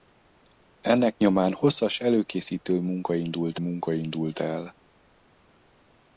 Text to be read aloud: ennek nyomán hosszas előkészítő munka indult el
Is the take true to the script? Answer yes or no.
no